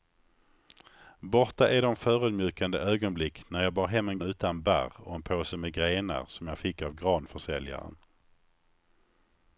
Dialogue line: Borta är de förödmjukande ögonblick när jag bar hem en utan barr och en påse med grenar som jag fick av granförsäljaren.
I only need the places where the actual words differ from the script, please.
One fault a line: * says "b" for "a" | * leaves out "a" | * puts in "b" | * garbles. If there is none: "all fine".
all fine